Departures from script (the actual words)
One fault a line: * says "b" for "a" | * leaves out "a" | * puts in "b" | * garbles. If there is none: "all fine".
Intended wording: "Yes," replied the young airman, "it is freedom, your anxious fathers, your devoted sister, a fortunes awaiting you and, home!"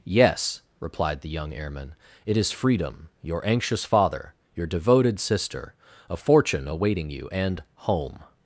* says "father" for "fathers"
* says "fortune" for "fortunes"